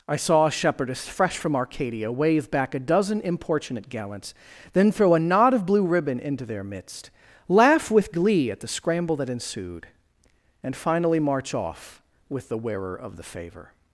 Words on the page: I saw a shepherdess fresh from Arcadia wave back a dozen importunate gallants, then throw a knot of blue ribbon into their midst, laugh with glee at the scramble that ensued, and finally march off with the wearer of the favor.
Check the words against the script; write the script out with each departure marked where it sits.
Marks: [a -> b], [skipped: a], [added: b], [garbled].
I saw a shepherdess fresh from Arcadia wave back a dozen importunate gallants, then throw a knot of blue ribbon into their midst, laugh with glee at the scramble that ensued, and finally march off with the wearer of the favor.